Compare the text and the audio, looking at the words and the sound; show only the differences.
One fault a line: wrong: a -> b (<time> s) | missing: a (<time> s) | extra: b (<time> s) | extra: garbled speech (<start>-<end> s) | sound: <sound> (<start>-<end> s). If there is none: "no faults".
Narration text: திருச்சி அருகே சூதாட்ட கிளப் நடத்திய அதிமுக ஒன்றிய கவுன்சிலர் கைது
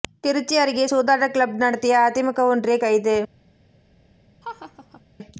missing: கவுன்சிலர் (2.8 s)
sound: laugh (4.4-5.0 s)